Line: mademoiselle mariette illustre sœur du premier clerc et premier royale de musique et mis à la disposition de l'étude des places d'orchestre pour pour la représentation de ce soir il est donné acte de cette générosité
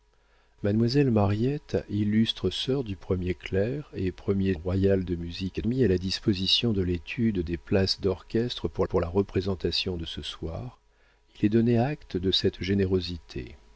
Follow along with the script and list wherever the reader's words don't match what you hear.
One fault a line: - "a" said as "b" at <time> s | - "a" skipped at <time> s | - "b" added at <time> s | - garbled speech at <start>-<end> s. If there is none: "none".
none